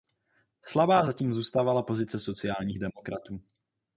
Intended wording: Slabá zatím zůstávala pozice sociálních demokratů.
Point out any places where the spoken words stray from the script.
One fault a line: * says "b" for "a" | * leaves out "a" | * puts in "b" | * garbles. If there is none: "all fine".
all fine